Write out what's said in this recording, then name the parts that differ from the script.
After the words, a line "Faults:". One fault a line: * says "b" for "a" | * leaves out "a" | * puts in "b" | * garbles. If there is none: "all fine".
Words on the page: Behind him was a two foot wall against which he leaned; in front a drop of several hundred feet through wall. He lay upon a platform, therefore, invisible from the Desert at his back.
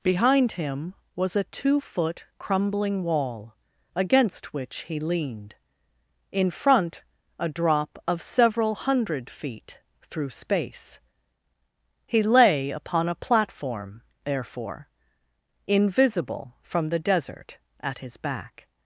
Behind him was a two foot crumbling wall against which he leaned; in front a drop of several hundred feet through space. He lay upon a platform, therefore, invisible from the Desert at his back.
Faults:
* puts in "crumbling"
* says "space" for "wall"